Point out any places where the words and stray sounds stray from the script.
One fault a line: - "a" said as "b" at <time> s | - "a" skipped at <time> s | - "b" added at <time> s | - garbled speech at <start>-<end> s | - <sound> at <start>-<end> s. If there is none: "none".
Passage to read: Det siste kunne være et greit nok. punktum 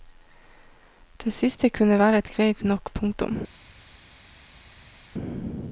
none